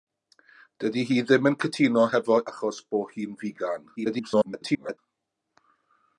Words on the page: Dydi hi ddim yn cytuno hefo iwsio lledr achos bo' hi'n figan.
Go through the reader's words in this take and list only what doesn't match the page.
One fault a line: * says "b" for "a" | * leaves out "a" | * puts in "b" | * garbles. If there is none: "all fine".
* leaves out "iwsio lledr"
* garbles